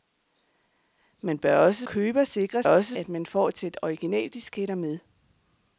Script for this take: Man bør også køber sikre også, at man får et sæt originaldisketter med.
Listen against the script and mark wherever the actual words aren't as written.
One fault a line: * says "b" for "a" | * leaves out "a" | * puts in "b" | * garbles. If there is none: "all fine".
all fine